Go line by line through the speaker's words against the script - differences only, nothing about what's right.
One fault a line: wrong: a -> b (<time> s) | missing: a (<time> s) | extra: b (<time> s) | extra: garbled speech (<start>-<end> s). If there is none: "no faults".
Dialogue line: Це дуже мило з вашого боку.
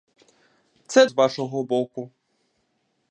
missing: дуже мило (1.1 s)